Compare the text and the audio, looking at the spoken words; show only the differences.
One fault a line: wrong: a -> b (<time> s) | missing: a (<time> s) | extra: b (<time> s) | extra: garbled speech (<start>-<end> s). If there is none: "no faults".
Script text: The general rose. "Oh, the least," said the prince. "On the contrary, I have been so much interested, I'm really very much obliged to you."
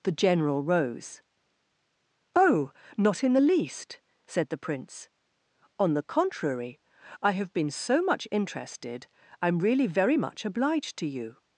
extra: not in (3.0 s)